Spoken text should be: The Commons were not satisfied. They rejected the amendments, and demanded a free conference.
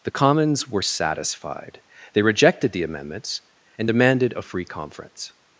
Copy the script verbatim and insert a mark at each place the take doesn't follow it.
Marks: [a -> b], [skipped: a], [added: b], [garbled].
The Commons were [skipped: not] satisfied. They rejected the amendments, and demanded a free conference.